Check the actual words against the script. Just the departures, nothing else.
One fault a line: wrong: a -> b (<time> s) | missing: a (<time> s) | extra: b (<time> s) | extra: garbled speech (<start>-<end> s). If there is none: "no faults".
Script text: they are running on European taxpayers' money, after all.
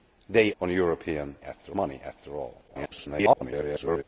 missing: are running (0.5 s)
wrong: taxpayers -> after (1.5 s)
extra: garbled speech (2.7-4.0 s)